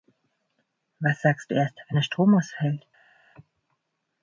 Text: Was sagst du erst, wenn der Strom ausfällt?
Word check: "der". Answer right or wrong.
right